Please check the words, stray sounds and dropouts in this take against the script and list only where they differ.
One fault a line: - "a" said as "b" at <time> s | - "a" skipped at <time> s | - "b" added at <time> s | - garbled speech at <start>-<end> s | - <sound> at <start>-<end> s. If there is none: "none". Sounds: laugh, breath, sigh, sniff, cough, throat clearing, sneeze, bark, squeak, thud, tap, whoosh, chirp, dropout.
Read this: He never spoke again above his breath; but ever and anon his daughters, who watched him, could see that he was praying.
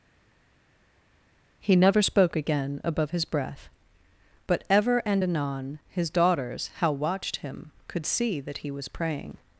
- "who" said as "how" at 6.8 s